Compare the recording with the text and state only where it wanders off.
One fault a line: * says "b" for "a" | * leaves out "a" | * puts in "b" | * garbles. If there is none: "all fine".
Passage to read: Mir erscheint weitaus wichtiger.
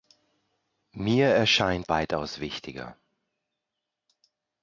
all fine